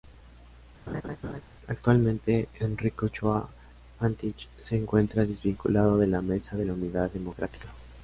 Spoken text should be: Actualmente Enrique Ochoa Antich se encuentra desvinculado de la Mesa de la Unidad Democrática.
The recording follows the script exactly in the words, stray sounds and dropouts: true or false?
false